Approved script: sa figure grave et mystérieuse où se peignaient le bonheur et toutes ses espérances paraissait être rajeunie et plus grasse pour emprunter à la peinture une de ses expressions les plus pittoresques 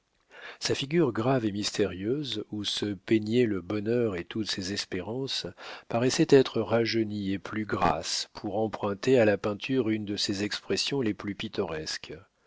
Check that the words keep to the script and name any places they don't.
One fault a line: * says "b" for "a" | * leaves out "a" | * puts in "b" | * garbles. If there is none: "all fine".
all fine